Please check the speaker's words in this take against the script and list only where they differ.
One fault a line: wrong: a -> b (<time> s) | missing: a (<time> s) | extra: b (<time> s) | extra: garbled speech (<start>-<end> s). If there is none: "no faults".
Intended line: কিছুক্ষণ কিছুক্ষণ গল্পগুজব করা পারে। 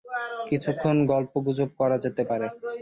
missing: কিছুক্ষণ (1.0 s)
extra: যেতে (2.0 s)